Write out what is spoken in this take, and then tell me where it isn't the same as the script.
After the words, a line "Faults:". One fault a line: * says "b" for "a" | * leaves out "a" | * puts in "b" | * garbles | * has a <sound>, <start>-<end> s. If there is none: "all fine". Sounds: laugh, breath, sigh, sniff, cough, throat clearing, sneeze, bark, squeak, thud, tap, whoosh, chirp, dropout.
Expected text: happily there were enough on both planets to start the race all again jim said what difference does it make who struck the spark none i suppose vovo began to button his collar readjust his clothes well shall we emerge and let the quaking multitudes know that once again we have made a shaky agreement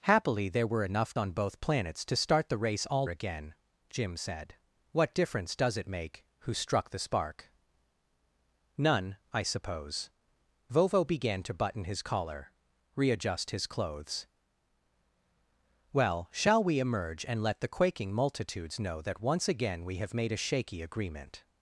happily there were enough on both planets to start the race all again jim said what difference does it make who struck the spark none i suppose vovo began to button his collar readjust his clothes well shall we emerge and let the quaking multitudes know that once again we have made a shaky agreement
Faults:
all fine